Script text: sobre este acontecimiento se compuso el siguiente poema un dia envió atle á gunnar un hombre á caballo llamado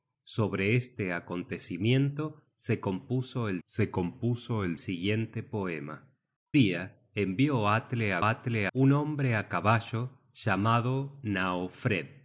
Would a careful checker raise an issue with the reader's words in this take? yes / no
yes